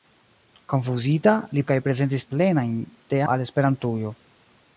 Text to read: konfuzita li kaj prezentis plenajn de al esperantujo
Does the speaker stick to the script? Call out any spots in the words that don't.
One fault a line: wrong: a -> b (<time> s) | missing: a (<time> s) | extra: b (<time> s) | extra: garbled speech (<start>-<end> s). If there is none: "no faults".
no faults